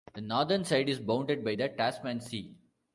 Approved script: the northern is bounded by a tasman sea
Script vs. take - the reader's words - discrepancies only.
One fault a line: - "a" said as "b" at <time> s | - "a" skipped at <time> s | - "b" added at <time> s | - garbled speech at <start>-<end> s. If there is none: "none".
- "side" added at 0.6 s
- "a" said as "the" at 1.5 s